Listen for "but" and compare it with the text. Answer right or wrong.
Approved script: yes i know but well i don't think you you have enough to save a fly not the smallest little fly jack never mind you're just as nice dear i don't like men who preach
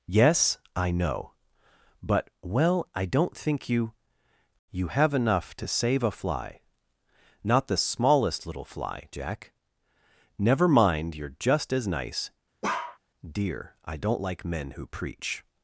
right